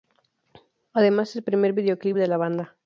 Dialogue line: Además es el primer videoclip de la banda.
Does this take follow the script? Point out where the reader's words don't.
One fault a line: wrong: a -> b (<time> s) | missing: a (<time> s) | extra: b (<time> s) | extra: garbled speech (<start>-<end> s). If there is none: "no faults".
no faults